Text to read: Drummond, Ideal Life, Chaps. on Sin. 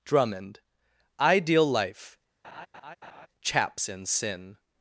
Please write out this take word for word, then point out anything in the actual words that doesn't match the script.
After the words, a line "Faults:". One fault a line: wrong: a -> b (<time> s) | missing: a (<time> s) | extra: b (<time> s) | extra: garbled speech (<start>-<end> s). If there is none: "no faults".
Drummond, Ideal Life, Chaps. in Sin.
Faults:
wrong: on -> in (3.9 s)